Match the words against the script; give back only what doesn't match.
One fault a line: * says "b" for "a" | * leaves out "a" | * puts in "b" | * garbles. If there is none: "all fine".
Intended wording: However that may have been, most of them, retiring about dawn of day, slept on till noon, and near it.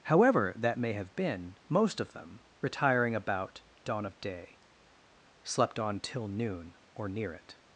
* says "or" for "and"